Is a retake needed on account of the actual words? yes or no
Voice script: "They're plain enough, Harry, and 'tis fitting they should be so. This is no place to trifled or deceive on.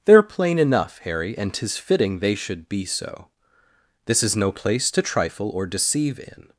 yes